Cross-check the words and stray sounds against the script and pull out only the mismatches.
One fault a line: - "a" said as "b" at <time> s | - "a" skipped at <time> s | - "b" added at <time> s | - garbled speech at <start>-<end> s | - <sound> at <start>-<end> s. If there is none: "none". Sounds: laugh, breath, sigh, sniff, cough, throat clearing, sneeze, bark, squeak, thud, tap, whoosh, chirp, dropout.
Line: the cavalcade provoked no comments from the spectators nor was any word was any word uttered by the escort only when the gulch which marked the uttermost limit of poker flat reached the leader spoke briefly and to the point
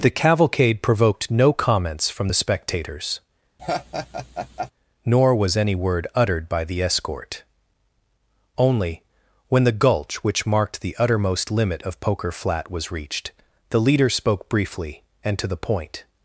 - laugh at 3.6-4.7 s
- "was any word" skipped at 6.1 s
- "was" added at 12.7 s